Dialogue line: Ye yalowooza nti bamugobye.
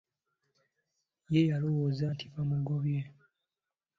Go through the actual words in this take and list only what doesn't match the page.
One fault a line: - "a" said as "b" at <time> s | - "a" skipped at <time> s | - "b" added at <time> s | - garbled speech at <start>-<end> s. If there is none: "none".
none